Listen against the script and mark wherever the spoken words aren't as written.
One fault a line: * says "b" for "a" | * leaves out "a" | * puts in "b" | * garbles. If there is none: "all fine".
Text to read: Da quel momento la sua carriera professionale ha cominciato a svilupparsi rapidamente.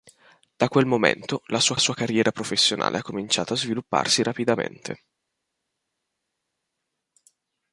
* puts in "sua"